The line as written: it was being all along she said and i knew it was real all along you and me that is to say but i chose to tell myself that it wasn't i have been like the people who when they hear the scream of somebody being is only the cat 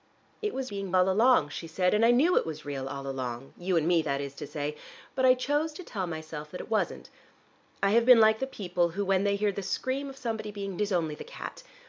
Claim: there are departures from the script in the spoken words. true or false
false